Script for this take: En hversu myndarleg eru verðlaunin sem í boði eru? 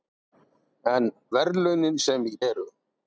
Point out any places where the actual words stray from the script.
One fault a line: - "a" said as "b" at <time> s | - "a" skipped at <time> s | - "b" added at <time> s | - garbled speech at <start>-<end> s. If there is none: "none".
- "hversu myndarleg eru" skipped at 1.1 s
- "boði" skipped at 2.3 s